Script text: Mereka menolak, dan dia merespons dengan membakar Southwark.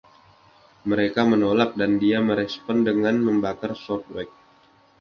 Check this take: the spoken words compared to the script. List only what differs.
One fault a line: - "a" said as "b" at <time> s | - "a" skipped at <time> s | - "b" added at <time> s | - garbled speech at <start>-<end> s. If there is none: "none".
none